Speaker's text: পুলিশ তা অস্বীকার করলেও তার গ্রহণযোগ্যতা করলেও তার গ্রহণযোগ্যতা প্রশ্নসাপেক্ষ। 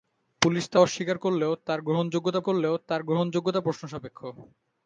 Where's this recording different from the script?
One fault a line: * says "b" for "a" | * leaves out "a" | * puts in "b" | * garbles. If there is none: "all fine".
all fine